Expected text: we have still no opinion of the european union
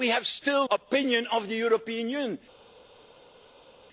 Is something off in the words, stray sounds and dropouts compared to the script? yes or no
yes